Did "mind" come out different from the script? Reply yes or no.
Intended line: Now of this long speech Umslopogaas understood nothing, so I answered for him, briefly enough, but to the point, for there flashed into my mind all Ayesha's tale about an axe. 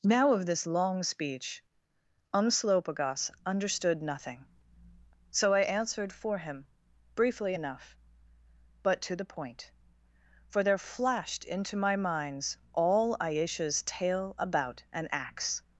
yes